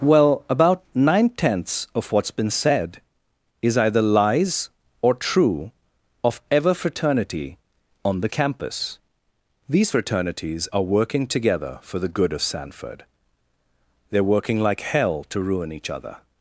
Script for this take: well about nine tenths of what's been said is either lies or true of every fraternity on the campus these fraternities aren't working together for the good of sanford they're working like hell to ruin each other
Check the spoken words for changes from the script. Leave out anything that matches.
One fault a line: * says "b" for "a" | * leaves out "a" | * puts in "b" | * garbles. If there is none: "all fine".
* says "ever" for "every"
* says "are" for "aren't"